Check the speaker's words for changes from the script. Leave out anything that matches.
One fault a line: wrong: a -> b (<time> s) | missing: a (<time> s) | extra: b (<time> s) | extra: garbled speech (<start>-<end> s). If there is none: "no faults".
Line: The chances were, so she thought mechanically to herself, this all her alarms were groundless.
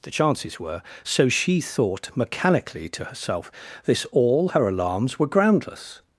no faults